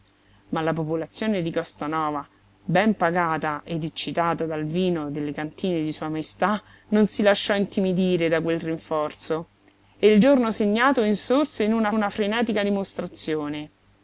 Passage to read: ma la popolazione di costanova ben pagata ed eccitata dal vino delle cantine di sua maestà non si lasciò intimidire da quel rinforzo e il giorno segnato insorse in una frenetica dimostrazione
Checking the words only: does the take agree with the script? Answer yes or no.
no